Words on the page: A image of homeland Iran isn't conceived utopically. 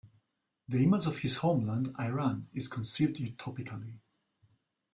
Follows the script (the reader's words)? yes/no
no